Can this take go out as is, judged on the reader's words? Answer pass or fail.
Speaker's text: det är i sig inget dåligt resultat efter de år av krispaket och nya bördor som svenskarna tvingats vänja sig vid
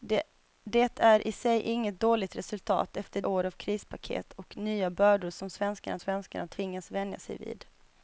fail